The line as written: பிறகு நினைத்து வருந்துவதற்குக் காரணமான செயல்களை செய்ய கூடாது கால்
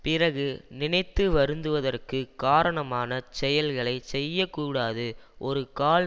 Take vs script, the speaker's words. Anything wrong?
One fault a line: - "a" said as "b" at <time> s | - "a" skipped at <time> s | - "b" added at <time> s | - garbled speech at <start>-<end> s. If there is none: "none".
- "ஒரு" added at 5.4 s